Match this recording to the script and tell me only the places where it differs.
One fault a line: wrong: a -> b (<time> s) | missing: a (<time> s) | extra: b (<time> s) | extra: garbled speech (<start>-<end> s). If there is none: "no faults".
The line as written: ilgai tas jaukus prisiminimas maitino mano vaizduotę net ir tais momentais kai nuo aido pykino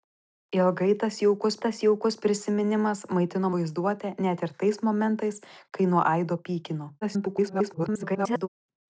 extra: tas jaukus (1.6 s)
missing: mano (3.5 s)
extra: garbled speech (7.0-8.5 s)